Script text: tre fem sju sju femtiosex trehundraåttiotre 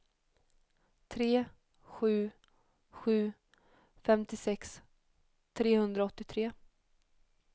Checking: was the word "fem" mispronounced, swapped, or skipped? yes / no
yes